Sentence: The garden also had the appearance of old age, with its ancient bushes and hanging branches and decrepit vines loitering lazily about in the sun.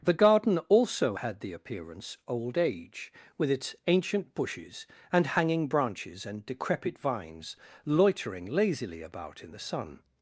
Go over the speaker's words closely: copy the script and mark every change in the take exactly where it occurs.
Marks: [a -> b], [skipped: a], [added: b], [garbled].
The garden also had the appearance [skipped: of] old age, with its ancient bushes and hanging branches and decrepit vines loitering lazily about in the sun.